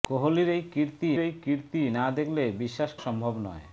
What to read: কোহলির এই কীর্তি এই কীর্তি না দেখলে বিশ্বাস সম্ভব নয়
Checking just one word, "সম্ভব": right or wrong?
right